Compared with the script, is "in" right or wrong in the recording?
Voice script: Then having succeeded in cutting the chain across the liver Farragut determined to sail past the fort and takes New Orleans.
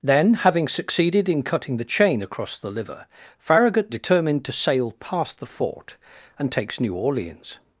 right